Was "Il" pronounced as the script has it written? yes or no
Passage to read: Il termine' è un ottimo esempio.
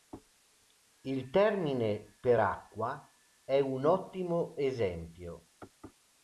yes